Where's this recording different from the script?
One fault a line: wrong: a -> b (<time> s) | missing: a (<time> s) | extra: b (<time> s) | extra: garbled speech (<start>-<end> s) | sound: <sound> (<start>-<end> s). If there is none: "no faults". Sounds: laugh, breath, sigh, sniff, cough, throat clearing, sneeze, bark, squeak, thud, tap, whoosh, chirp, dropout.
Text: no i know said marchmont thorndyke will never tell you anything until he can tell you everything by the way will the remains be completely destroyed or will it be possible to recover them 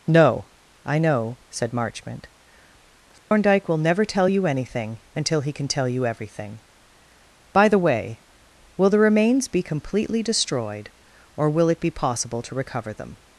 sound: dropout (3.2-3.3 s)